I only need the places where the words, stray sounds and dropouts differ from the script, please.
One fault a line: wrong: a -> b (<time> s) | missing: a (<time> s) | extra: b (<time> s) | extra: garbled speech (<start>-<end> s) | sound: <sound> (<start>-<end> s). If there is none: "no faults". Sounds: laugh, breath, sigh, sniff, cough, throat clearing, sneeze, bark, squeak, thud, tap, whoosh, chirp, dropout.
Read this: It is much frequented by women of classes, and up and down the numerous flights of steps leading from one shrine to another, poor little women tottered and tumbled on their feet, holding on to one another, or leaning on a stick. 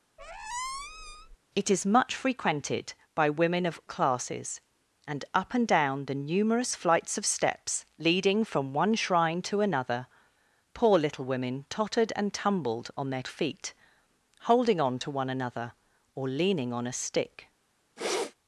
sound: squeak (0.2-1.4 s)
sound: sniff (18.0-18.3 s)